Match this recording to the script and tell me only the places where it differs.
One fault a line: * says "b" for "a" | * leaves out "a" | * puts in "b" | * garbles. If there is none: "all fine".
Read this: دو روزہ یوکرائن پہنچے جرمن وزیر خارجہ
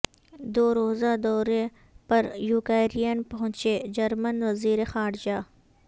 * puts in "دورے پر"